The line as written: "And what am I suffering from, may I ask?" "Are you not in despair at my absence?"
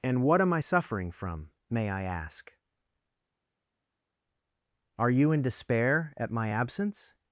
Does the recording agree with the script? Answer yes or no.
no